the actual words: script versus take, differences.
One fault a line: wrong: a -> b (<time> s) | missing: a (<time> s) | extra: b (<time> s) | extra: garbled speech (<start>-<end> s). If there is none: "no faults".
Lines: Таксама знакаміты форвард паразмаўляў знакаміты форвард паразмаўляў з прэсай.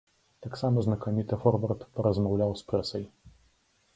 missing: знакаміты форвард паразмаўляў (2.6 s)